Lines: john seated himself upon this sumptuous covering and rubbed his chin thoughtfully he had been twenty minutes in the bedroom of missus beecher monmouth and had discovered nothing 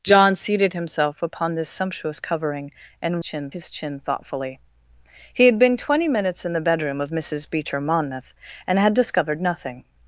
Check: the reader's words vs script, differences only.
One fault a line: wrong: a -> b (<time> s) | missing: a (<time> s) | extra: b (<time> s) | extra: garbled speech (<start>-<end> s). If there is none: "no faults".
wrong: rubbed -> chin (3.2 s)